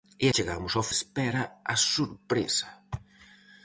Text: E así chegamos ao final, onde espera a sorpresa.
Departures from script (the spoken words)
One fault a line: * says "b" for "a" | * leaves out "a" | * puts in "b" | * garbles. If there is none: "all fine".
* leaves out "así"
* leaves out "final onde"